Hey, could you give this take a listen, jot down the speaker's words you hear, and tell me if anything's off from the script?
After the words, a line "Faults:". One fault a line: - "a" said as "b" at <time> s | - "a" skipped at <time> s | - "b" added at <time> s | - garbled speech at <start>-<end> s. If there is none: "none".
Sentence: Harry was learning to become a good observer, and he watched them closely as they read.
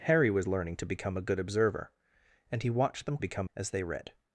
Harry was learning to become a good observer, and he watched them become as they read.
Faults:
- "closely" said as "become" at 3.2 s